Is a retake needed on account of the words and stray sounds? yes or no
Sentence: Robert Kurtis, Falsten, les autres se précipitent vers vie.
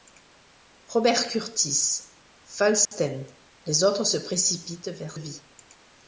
yes